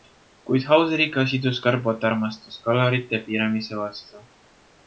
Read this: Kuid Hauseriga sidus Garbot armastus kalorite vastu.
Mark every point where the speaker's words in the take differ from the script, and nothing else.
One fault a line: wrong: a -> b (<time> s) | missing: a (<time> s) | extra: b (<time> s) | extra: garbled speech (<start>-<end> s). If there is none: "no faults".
extra: piiramise (3.3 s)